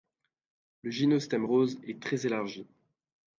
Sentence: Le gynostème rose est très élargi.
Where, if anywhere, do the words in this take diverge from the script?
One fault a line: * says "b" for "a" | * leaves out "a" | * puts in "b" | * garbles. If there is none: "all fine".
all fine